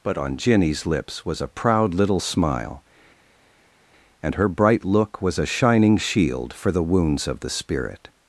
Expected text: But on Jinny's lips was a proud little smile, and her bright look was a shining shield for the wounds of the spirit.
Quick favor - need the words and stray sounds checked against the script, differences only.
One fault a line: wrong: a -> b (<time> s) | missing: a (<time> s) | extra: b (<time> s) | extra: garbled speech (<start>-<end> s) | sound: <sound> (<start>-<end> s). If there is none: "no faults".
no faults